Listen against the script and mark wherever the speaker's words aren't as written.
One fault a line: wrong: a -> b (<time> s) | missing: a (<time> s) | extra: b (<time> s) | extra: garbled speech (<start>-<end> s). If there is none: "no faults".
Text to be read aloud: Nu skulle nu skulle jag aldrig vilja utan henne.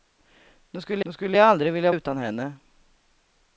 no faults